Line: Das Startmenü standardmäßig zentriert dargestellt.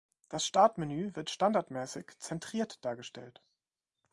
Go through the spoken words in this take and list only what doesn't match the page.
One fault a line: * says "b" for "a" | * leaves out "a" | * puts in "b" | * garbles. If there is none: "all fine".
* puts in "wird"